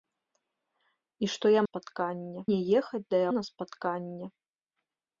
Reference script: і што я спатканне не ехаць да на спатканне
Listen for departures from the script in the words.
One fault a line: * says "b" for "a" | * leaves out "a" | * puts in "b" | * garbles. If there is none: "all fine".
all fine